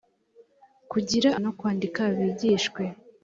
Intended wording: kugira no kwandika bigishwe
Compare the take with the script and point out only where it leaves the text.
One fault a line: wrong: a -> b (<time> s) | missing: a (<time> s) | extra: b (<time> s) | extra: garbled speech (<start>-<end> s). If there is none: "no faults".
no faults